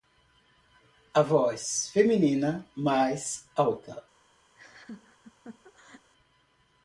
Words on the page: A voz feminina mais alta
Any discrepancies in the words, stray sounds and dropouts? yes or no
yes